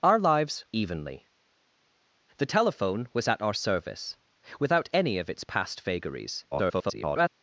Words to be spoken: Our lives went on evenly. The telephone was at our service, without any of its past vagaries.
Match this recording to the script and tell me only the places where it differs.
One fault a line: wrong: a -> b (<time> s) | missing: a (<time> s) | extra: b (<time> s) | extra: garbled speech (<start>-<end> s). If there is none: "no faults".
missing: went on (0.7 s)
extra: garbled speech (6.5-7.3 s)